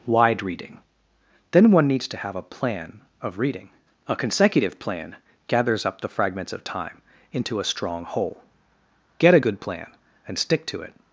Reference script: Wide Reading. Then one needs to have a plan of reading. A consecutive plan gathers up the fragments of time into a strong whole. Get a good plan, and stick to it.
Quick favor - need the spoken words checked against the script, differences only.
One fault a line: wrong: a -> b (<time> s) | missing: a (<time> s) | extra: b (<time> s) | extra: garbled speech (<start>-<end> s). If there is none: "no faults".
no faults